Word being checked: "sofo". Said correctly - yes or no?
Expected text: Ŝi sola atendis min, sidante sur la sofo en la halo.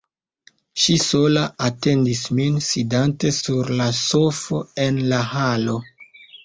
yes